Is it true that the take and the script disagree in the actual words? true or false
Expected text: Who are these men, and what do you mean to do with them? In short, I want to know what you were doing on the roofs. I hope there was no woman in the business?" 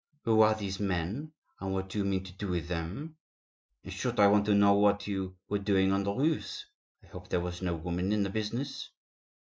false